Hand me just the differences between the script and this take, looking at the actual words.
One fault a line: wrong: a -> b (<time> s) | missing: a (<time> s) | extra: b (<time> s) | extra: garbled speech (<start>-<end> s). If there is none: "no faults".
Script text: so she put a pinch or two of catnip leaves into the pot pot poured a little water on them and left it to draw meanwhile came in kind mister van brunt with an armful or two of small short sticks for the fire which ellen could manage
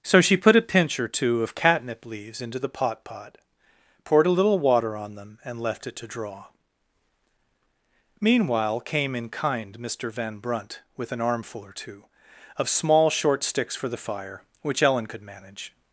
no faults